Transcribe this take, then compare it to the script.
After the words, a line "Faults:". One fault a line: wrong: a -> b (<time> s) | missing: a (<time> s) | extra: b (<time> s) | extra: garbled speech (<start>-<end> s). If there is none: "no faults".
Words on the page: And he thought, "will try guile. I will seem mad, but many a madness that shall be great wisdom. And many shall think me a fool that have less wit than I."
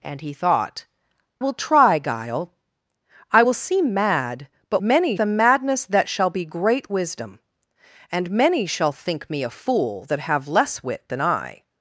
And he thought, "will try guile. I will seem mad, but many a madness that shall be great wisdom. And many shall think me a fool that have less wit than I."
Faults:
no faults